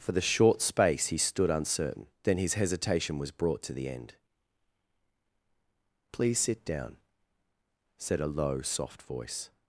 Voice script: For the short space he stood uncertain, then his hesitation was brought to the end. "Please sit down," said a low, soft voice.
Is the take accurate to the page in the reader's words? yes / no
yes